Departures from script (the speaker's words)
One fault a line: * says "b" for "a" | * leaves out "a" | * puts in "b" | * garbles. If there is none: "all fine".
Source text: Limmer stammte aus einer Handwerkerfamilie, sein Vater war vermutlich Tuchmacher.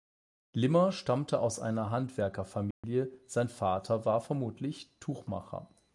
all fine